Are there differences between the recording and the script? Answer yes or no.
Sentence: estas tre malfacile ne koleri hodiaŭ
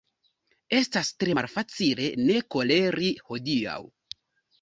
no